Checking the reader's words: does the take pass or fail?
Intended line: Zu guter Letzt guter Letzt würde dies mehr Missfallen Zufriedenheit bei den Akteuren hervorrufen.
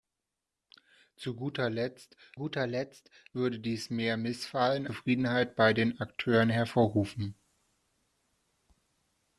pass